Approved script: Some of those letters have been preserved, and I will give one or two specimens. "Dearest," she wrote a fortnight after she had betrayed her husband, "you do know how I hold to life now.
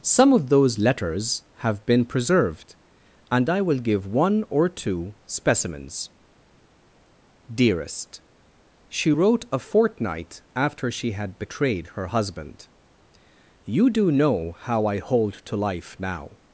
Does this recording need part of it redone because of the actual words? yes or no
no